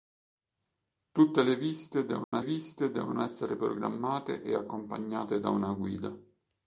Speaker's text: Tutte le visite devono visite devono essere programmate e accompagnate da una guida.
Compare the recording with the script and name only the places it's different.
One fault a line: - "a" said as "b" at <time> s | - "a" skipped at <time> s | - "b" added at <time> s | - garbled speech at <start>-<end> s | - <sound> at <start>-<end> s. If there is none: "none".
- dropout at 2.2-2.3 s